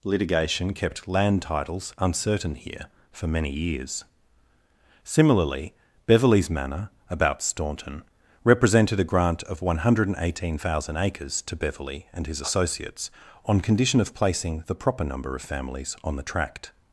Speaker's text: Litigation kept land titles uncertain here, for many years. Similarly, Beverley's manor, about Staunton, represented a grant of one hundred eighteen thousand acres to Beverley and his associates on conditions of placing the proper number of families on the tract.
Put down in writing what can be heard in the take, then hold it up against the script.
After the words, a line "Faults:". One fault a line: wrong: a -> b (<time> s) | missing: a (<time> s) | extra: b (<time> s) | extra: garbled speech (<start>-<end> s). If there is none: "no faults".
Litigation kept land titles uncertain here, for many years. Similarly, Beverley's manor, about Staunton, represented a grant of one hundred eighteen thousand acres to Beverley and his associates on condition of placing the proper number of families on the tract.
Faults:
wrong: conditions -> condition (13.6 s)